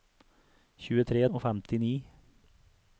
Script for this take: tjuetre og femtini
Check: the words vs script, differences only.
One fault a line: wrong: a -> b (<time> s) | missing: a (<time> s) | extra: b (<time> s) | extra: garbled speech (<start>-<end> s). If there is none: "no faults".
no faults